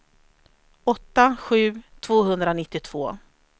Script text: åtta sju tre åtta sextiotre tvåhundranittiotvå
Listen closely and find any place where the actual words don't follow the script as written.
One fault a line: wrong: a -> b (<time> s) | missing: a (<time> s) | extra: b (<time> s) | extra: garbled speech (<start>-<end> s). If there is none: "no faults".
missing: tre åtta sextiotre (1.8 s)